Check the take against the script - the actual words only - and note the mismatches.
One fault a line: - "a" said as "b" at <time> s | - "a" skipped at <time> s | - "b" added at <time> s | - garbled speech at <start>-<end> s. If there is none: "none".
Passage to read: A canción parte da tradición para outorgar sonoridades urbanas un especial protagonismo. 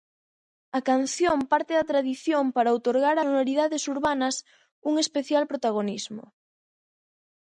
none